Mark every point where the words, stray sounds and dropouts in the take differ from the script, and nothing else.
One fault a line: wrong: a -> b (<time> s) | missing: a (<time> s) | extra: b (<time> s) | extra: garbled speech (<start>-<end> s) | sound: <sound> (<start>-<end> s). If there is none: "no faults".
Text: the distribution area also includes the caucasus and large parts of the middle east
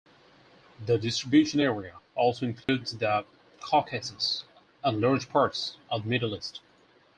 sound: dropout (2.6-2.7 s)